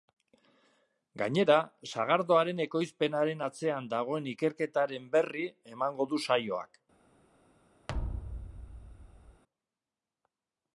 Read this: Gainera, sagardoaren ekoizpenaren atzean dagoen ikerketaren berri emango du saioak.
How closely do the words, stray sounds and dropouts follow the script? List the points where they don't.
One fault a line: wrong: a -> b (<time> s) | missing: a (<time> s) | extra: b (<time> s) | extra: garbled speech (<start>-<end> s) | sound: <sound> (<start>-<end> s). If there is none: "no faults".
sound: thud (7.9-9.4 s)